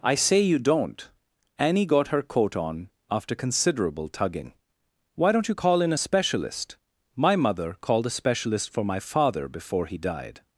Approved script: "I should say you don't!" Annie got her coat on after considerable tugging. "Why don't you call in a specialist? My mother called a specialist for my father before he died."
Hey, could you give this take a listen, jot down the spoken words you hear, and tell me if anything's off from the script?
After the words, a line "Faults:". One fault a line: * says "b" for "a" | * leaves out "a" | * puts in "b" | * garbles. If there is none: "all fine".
"I say you don't!" Annie got her coat on after considerable tugging. "Why don't you call in a specialist? My mother called a specialist for my father before he died."
Faults:
* leaves out "should"